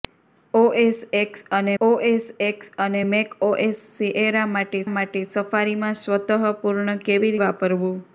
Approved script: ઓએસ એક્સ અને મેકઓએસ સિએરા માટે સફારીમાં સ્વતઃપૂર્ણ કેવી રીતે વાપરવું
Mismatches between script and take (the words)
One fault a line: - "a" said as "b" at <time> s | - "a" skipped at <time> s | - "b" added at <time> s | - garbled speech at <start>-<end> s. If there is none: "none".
- "ઓએસ એક્સ અને" added at 1.8 s
- "માટે" added at 4.9 s
- "રીતે" skipped at 7.3 s